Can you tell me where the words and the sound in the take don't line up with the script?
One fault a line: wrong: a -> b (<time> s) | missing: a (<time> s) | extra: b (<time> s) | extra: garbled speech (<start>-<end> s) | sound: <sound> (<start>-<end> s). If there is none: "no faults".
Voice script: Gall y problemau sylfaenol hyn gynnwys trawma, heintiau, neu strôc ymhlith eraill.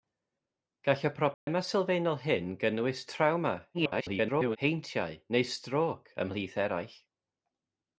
sound: dropout (1.3-1.5 s)
extra: garbled speech (3.7-4.6 s)